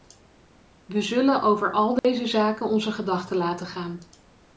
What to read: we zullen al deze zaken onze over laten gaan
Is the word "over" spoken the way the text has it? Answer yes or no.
no